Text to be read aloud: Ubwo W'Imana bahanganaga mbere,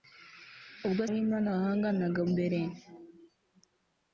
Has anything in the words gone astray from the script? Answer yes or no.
no